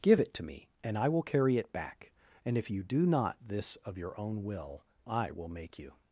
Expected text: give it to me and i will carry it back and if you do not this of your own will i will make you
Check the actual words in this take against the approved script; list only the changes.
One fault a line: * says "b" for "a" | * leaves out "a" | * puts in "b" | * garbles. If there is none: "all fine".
all fine